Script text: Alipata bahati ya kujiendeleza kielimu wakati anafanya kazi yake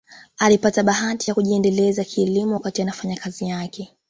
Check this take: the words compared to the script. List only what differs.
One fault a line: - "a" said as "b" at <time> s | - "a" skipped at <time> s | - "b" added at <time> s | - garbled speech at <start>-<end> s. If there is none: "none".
none